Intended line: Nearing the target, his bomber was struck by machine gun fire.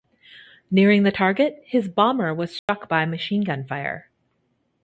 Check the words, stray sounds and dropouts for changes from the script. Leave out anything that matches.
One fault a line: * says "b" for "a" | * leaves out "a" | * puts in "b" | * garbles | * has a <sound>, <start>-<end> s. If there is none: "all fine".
* has a dropout, 2.6-2.7 s